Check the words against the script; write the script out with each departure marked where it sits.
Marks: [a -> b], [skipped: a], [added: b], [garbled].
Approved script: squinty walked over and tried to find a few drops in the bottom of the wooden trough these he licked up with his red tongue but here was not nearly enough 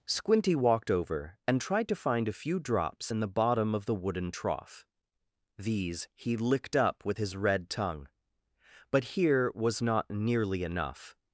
squinty walked over and tried to find a few drops in the bottom of the wooden trough these he licked up with his red tongue but here was not nearly enough